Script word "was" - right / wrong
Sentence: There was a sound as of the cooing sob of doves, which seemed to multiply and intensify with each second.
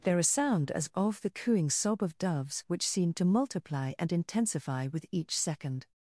wrong